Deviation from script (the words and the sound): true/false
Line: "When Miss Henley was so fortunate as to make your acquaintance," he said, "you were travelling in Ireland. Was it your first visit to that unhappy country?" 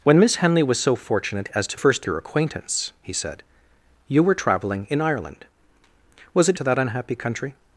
true